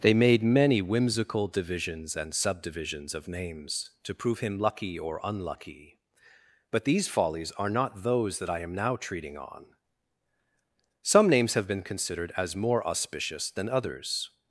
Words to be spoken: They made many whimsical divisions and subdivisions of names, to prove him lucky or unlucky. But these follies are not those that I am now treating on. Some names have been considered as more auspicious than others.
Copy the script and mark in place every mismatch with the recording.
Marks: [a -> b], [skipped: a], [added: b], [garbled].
They made many whimsical divisions and subdivisions of names, to prove him lucky or unlucky. But these follies are not those that I am now treating on. Some names have been considered as more auspicious than others.